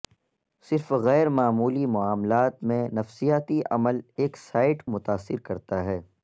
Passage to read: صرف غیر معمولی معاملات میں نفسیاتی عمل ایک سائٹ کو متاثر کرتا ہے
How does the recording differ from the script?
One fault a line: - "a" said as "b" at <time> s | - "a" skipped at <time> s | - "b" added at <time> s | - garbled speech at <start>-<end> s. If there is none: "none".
- "کو" skipped at 4.8 s